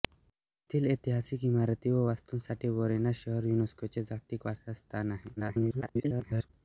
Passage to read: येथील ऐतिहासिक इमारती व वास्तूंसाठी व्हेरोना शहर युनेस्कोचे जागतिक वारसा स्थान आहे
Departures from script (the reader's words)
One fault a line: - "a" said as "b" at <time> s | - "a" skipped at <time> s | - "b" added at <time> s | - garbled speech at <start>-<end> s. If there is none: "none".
- garbled speech at 5.4-6.5 s